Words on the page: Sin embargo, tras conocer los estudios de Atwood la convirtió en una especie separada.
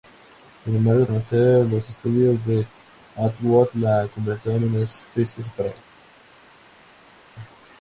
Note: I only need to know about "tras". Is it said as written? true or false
false